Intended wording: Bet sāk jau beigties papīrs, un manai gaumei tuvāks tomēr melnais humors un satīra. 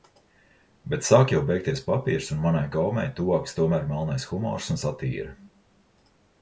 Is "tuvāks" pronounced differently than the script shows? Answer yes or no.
no